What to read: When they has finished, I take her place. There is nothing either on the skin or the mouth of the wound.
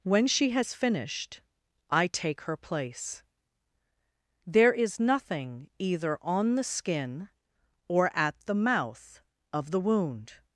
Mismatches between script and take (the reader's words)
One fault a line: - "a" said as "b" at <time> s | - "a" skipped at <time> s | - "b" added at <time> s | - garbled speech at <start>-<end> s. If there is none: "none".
- "they" said as "she" at 0.2 s
- "at" added at 8.2 s